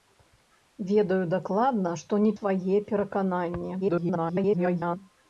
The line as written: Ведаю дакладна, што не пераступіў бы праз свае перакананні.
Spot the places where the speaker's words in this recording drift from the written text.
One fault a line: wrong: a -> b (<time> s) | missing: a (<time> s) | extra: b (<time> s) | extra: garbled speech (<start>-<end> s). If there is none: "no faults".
missing: пераступіў бы праз (2.3 s)
extra: garbled speech (3.8-5.0 s)